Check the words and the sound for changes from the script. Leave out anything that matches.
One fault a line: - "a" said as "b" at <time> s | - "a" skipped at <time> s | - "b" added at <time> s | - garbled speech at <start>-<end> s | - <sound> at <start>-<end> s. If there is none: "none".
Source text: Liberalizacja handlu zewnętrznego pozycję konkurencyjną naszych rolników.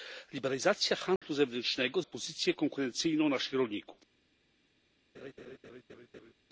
- dropout at 1.2-1.2 s
- laugh at 5.1-6.3 s